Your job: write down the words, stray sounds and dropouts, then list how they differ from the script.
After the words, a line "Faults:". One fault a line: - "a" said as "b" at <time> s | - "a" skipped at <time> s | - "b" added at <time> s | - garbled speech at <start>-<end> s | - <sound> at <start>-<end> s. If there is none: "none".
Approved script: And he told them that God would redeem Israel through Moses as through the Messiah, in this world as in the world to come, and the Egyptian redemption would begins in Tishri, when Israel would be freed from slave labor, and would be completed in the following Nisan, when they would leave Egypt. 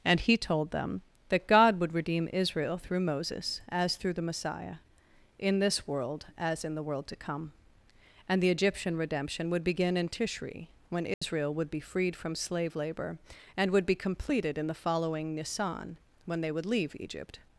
And he told them that God would redeem Israel through Moses as through the Messiah, in this world as in the world to come, and the Egyptian redemption would begin in Tishri, when Israel would be freed from slave labor, and would be completed in the following Nisan, when they would leave Egypt.
Faults:
- "begins" said as "begin" at 9.6 s
- dropout at 11.1-11.2 s